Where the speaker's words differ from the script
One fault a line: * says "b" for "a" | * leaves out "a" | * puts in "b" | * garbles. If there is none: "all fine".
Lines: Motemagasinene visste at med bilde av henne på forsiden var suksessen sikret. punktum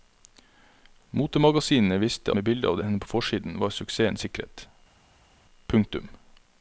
* leaves out "at"